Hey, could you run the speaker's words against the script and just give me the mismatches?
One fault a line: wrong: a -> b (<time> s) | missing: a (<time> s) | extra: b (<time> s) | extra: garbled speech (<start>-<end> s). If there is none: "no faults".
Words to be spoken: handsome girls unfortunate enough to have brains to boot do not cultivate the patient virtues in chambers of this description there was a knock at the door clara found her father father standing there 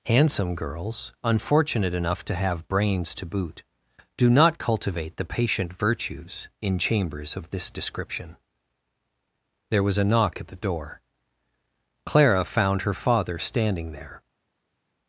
missing: father (13.4 s)